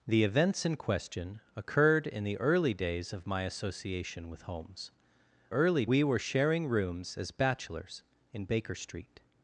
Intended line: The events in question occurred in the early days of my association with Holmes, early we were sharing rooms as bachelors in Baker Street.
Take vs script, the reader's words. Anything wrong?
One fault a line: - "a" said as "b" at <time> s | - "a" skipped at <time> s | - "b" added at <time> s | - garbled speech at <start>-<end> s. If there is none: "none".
none